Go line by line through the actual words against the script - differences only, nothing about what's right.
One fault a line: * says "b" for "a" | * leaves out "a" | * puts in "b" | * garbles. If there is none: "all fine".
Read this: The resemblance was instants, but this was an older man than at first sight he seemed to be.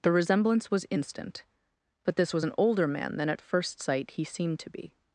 * says "instant" for "instants"